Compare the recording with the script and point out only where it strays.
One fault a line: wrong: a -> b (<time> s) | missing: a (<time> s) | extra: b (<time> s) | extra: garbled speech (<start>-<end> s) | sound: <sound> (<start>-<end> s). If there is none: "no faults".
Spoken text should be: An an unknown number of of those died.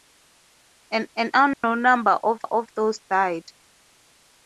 sound: dropout (1.5-1.6 s)